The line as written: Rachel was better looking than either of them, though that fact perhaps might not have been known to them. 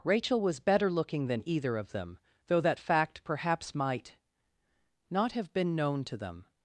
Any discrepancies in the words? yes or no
no